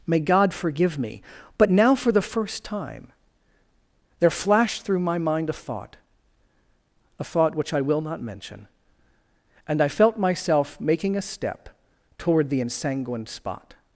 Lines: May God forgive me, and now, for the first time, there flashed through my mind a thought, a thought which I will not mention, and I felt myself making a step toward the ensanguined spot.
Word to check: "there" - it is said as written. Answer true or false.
true